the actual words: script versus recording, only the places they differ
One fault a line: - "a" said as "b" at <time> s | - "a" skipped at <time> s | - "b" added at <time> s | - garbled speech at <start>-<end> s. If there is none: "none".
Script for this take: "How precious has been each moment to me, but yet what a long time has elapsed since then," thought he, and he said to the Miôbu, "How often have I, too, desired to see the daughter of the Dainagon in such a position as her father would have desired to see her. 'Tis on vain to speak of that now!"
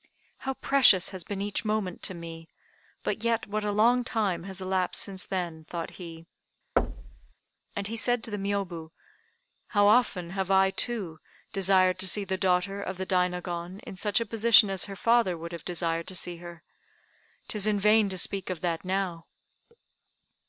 - "on" said as "in" at 17.7 s